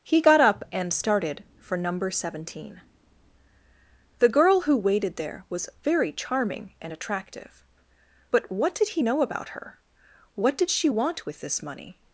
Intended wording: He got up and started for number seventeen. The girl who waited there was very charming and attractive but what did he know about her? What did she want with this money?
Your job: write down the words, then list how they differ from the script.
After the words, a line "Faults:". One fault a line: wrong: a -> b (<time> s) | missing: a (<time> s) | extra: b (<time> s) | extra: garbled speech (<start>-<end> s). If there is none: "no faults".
He got up and started for number seventeen. The girl who waited there was very charming and attractive but what did he know about her? What did she want with this money?
Faults:
no faults